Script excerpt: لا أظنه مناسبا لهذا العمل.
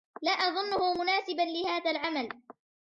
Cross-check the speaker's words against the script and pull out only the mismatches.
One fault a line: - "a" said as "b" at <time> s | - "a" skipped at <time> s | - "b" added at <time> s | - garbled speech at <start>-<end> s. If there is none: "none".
none